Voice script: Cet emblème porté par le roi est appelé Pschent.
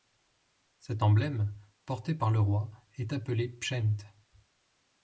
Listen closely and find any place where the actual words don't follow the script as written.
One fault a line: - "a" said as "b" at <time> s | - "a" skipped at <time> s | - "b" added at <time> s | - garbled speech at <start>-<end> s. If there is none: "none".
none